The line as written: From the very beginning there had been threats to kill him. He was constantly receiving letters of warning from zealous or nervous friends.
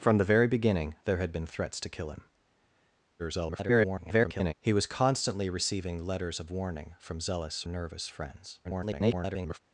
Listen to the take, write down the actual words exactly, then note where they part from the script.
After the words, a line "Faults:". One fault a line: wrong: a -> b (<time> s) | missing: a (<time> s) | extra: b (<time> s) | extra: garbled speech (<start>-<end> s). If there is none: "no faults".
From the very beginning there had been threats to kill him. [garbled] He was constantly receiving letters of warning from zealous nervous friends. [garbled]
Faults:
extra: garbled speech (3.2-4.5 s)
missing: or (7.6 s)
extra: garbled speech (8.6-9.6 s)